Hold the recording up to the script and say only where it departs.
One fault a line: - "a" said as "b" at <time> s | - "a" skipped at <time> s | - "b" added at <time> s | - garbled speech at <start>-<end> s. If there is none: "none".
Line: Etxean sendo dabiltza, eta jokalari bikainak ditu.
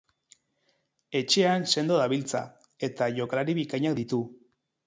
none